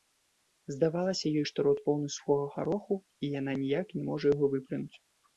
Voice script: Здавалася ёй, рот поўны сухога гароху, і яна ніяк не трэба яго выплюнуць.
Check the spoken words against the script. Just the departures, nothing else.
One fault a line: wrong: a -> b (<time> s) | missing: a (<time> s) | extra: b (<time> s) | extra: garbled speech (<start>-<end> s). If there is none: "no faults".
extra: што (1.5 s)
wrong: трэба -> можа (4.1 s)